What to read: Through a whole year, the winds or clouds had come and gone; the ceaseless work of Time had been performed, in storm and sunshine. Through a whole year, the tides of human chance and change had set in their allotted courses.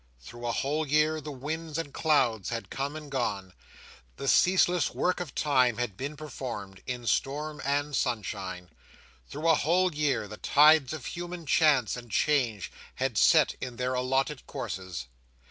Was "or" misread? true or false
true